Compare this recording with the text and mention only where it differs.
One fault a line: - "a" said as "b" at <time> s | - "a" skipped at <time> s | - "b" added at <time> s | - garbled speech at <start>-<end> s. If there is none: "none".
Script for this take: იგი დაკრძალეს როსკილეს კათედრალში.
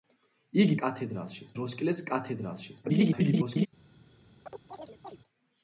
- "დაკრძალეს" said as "კათედრალში" at 0.8 s
- garbled speech at 2.8-3.7 s